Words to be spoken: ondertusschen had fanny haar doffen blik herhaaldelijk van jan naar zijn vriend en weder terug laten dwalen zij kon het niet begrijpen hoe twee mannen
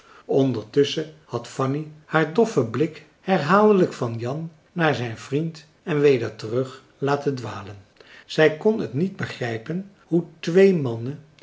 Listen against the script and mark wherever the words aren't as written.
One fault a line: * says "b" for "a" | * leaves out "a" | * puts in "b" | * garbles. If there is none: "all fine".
all fine